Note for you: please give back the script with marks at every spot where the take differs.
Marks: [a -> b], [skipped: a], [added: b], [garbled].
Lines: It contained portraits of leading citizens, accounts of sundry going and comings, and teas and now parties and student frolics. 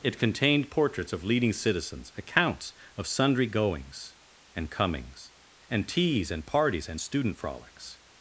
It contained portraits of leading citizens, accounts of sundry [going -> goings] and comings, and teas and [skipped: now] parties and student frolics.